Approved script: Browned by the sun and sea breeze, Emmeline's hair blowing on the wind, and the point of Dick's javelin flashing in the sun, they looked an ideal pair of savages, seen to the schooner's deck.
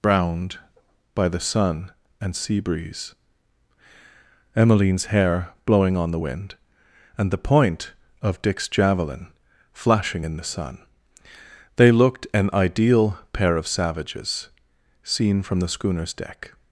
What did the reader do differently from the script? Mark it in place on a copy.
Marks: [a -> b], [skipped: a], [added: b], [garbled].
Browned by the sun and sea breeze, Emmeline's hair blowing on the wind, and the point of Dick's javelin flashing in the sun, they looked an ideal pair of savages, seen [to -> from] the schooner's deck.